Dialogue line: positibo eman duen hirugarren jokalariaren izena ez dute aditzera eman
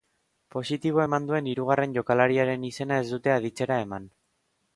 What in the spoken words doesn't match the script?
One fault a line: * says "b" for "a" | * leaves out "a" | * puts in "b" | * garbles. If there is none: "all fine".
all fine